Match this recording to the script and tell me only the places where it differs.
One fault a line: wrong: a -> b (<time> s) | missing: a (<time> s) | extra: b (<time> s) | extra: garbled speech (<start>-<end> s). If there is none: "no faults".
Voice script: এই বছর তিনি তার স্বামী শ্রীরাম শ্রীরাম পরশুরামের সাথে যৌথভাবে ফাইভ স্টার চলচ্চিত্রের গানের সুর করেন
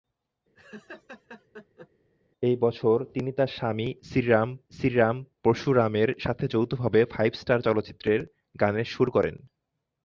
no faults